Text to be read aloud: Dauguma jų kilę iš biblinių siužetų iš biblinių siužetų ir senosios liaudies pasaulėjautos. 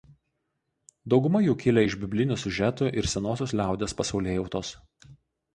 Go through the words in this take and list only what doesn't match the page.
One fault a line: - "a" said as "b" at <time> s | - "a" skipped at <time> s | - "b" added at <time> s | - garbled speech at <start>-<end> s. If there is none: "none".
- "iš biblinių siužetų" skipped at 2.9 s